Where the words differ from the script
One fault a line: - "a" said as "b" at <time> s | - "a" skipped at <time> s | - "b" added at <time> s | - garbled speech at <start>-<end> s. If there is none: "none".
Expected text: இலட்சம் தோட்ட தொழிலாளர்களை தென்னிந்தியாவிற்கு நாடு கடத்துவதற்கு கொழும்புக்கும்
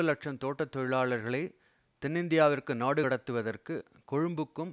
none